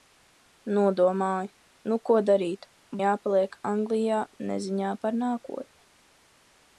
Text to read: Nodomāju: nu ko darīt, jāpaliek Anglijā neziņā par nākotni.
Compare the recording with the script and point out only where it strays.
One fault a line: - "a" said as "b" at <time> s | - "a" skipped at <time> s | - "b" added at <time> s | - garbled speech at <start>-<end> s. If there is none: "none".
none